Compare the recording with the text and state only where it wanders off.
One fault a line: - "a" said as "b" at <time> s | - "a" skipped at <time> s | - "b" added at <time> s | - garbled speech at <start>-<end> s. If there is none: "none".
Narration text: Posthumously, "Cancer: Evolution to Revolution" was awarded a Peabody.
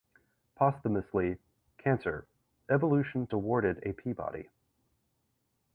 - "to Revolution was" skipped at 3.3 s